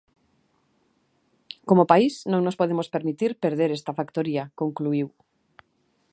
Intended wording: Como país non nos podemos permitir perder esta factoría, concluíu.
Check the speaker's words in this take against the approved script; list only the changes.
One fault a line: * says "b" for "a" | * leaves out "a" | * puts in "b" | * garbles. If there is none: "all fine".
all fine